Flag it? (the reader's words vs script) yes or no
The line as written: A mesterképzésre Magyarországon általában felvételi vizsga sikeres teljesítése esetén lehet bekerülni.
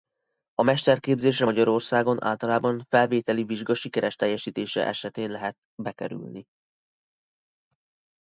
no